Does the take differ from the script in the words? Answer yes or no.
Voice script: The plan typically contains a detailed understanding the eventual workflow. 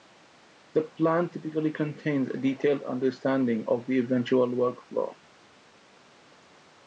yes